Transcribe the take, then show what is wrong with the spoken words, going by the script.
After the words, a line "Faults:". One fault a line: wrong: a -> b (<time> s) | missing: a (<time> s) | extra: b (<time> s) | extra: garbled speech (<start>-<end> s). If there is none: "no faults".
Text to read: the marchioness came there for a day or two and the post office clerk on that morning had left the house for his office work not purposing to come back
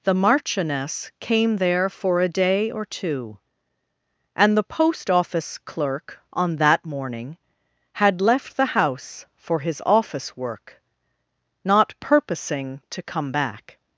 the marchioness came there for a day or two and the post office clerk on that morning had left the house for his office work not purposing to come back
Faults:
no faults